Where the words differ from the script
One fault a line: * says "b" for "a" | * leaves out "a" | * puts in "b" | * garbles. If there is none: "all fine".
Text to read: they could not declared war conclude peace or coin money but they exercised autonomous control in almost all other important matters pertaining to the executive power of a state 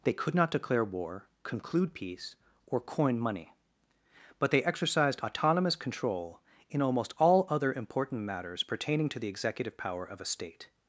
* says "declare" for "declared"